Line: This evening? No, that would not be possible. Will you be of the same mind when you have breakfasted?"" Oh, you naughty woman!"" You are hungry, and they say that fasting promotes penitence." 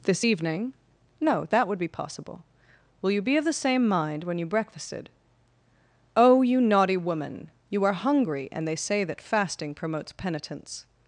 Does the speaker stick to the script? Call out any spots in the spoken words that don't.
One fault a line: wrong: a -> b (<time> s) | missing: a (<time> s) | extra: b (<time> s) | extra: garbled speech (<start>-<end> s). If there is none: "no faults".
missing: not (1.8 s)
missing: have (4.5 s)